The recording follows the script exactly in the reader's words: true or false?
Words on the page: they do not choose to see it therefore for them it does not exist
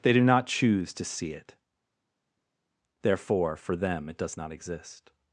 true